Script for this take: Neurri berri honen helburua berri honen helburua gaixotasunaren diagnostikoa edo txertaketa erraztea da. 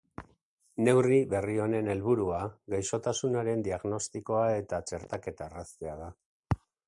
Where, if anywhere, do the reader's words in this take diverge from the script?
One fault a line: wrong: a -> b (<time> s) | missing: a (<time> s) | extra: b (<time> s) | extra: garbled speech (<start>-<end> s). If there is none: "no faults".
missing: berri honen helburua (2.4 s)
wrong: edo -> eta (4.6 s)